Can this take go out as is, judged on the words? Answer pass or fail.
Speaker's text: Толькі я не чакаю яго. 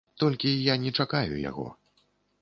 pass